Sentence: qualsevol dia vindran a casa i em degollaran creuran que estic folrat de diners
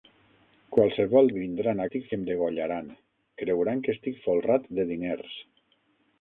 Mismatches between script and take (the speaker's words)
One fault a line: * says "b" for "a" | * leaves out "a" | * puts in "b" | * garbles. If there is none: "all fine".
* leaves out "dia"
* says "estic" for "casa"